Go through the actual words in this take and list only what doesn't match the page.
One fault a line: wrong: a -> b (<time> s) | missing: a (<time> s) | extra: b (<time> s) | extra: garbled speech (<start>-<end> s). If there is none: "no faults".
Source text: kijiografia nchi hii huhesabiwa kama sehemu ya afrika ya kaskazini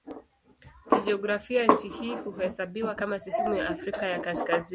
no faults